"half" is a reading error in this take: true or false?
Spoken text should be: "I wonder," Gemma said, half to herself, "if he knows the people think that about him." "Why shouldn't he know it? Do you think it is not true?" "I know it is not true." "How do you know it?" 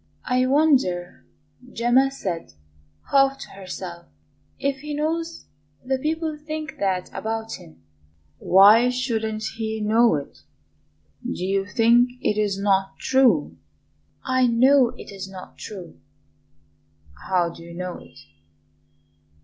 false